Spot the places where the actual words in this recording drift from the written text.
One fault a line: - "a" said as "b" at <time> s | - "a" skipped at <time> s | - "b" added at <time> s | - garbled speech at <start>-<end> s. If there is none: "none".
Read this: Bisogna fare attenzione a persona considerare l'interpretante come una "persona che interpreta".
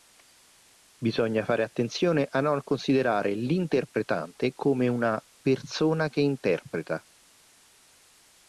- "persona" said as "non" at 2.4 s